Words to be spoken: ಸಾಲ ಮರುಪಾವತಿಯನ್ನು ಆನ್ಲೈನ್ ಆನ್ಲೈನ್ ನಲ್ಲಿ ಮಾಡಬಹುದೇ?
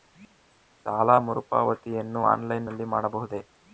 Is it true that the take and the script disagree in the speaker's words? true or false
true